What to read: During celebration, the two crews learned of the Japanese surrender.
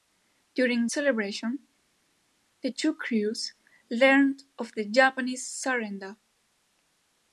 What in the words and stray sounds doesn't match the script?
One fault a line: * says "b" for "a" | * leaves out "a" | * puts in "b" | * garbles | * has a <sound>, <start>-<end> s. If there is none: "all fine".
all fine